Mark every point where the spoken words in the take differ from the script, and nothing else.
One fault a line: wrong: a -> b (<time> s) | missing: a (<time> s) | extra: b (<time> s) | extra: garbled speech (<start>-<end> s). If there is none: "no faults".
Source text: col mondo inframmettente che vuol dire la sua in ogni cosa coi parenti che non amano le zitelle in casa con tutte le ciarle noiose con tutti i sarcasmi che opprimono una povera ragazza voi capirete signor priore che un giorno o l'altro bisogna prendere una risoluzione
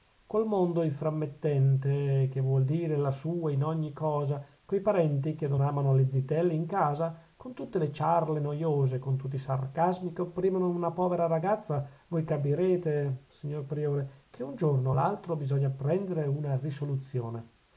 no faults